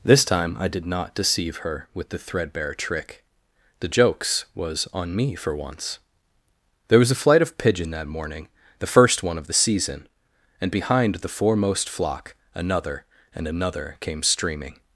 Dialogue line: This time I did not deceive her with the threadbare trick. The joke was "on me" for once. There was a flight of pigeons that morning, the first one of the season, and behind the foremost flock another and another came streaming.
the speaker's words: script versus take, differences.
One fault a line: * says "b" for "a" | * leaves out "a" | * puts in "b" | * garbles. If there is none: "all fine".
* says "jokes" for "joke"
* says "pigeon" for "pigeons"